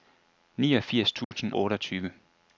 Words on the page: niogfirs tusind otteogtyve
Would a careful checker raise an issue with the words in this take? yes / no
no